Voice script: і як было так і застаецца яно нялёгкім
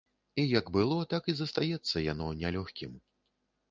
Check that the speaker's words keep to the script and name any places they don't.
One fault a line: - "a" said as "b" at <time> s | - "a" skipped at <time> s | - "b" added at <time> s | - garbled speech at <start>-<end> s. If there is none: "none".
none